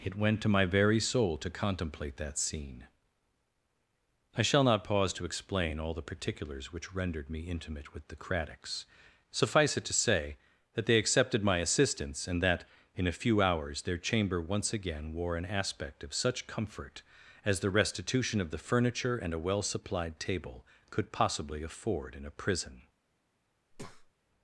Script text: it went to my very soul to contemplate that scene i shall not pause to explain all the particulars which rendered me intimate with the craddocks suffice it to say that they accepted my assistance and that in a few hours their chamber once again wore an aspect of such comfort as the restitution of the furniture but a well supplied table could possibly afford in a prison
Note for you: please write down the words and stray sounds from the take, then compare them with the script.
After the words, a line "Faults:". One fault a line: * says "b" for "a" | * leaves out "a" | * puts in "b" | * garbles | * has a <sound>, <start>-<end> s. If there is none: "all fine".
it went to my very soul to contemplate that scene i shall not pause to explain all the particulars which rendered me intimate with the craddocks suffice it to say that they accepted my assistance and that in a few hours their chamber once again wore an aspect of such comfort as the restitution of the furniture and a well supplied table could possibly afford in a prison
Faults:
* says "and" for "but"
* has a breath, 23.7-24.1 s